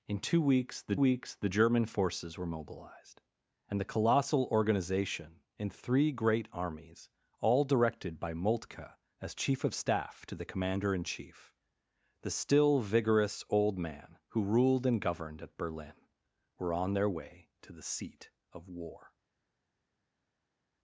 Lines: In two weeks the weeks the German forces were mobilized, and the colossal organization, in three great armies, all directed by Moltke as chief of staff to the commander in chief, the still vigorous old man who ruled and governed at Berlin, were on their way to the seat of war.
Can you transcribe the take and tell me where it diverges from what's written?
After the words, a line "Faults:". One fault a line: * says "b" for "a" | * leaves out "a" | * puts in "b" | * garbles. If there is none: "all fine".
In two weeks the weeks the German forces were mobilized, and the colossal organization, in three great armies, all directed by Moltke as chief of staff to the commander in chief, the still vigorous old man who ruled and governed at Berlin, were on their way to the seat of war.
Faults:
all fine